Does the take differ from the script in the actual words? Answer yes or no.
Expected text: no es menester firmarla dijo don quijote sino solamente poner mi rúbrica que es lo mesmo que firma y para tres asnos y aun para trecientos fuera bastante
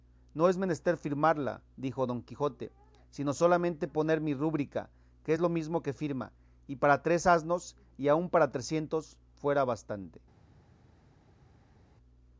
no